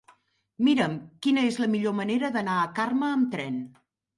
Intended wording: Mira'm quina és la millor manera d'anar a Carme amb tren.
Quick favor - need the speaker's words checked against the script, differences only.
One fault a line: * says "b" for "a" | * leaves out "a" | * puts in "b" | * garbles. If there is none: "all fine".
all fine